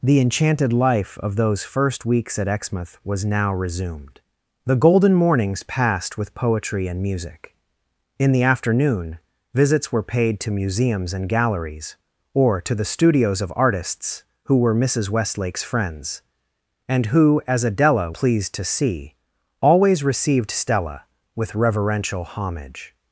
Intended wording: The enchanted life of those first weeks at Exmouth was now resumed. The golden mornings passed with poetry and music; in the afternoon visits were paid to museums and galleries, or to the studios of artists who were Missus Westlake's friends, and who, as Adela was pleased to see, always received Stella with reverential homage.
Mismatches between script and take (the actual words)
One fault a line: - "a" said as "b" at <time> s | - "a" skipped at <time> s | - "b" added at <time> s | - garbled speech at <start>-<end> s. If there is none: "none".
- "was" skipped at 18.1 s